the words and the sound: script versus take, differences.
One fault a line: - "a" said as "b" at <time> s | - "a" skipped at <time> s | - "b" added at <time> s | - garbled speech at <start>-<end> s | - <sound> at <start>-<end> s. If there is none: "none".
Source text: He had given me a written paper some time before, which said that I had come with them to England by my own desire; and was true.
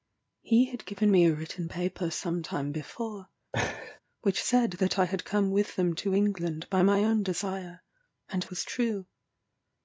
- laugh at 3.5-4.0 s